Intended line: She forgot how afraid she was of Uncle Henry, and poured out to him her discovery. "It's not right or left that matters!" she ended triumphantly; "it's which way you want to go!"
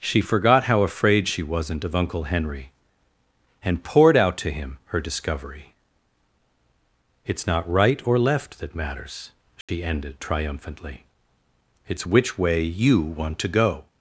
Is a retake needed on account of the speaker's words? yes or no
yes